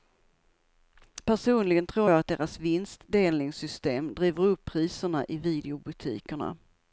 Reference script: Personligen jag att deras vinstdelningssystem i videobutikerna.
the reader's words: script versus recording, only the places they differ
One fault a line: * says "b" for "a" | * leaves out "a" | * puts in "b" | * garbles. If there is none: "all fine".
* puts in "tror"
* puts in "driver upp priserna"